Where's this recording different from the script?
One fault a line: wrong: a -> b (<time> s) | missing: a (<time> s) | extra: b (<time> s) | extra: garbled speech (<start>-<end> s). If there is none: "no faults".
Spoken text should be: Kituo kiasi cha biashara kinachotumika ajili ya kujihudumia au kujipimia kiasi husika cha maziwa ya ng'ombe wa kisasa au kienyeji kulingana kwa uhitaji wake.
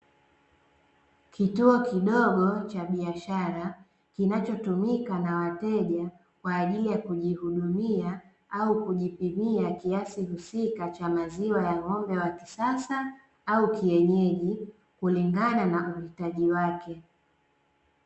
wrong: kiasi -> kidogo (1.8 s)
extra: na wateja kwa (5.2 s)
wrong: kwa -> na (15.7 s)